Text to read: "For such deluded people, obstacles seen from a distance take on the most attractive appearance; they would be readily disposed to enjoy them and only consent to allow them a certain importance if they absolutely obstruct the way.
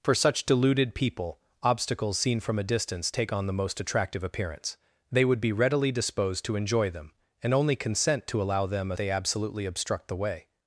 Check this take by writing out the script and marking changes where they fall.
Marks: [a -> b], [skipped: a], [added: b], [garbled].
"For such deluded people, obstacles seen from a distance take on the most attractive appearance; they would be readily disposed to enjoy them and only consent to allow them a [skipped: certain importance if] they absolutely obstruct the way.